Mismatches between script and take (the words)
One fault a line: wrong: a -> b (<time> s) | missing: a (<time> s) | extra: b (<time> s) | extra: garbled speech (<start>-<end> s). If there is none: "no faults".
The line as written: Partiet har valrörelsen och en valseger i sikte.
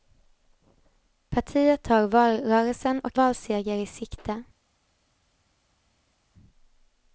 missing: en (3.2 s)